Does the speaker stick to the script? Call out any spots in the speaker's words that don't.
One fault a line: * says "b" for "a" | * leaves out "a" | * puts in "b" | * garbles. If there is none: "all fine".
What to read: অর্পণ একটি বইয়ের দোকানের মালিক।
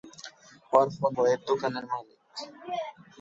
* leaves out "একটি"